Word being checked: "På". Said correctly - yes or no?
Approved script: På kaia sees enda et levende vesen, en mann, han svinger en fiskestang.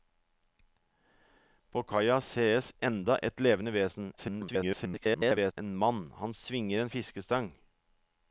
yes